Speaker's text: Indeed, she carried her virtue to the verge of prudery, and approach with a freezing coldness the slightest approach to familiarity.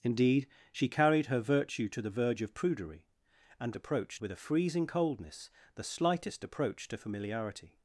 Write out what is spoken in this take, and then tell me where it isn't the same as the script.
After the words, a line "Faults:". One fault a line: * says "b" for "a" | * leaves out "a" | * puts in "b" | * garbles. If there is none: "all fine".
Indeed, she carried her virtue to the verge of prudery, and approach with a freezing coldness the slightest approach to familiarity.
Faults:
all fine